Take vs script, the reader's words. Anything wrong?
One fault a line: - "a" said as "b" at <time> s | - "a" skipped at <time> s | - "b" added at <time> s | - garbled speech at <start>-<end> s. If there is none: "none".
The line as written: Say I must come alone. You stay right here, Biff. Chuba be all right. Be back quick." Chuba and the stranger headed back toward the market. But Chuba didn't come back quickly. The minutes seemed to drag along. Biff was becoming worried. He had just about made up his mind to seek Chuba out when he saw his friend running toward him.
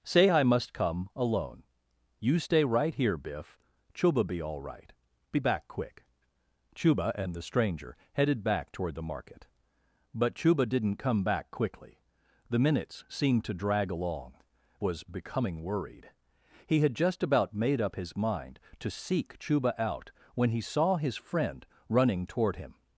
- "Biff" skipped at 14.4 s